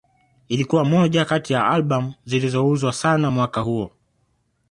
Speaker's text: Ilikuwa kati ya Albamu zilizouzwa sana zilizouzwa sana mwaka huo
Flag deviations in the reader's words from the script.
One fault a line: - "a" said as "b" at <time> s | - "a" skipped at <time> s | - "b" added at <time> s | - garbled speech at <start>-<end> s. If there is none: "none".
- "moja" added at 0.8 s
- "zilizouzwa sana" skipped at 3.3 s